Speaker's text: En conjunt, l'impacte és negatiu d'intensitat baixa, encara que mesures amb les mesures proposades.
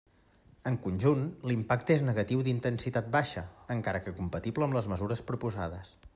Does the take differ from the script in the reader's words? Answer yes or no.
yes